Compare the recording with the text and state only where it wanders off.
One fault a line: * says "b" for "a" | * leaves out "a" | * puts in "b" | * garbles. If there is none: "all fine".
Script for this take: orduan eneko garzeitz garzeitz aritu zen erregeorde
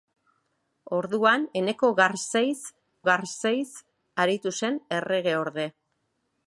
all fine